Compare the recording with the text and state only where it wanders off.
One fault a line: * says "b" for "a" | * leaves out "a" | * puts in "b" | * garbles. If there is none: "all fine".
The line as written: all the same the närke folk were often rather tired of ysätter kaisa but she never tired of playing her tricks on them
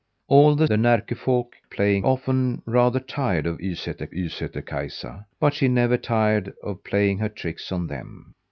* leaves out "same"
* says "playing" for "were"
* puts in "ysätter"